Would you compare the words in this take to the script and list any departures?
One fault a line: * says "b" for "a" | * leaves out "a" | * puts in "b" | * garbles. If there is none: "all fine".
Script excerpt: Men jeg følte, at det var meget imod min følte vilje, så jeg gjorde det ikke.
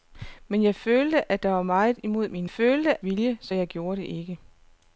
all fine